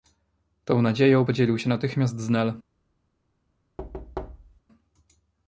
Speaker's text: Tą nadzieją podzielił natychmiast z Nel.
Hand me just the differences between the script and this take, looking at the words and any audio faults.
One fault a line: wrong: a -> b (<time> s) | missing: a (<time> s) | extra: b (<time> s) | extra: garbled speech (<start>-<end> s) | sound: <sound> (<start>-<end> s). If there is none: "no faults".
extra: się (1.6 s)
sound: thud (3.8-4.6 s)